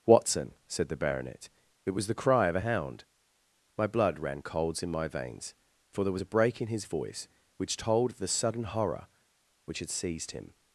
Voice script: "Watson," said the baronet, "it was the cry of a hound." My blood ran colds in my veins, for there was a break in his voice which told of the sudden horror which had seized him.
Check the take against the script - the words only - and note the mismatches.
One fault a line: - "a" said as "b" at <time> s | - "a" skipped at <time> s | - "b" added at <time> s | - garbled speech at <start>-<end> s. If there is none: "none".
none